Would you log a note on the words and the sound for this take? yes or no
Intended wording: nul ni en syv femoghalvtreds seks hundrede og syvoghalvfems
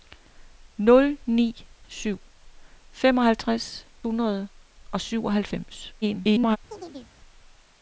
yes